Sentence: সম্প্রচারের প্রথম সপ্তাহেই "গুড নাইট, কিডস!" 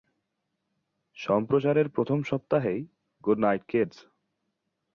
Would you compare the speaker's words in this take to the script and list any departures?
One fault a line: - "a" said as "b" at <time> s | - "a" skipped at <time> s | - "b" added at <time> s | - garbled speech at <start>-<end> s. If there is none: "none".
none